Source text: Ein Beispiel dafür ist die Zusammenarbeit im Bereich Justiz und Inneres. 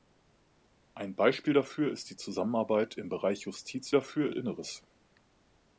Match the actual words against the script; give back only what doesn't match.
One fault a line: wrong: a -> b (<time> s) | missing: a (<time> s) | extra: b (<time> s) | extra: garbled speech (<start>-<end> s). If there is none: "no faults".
wrong: und -> dafür (3.9 s)